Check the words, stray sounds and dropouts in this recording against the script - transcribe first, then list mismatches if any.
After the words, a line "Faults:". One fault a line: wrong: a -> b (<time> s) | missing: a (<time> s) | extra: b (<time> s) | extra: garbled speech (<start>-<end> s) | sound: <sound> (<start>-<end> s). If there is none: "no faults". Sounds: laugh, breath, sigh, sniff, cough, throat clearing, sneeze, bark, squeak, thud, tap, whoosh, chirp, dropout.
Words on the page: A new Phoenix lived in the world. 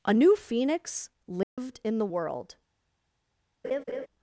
A new Phoenix lived in the world.
Faults:
sound: dropout (1.4-1.6 s)
sound: laugh (3.6-4.1 s)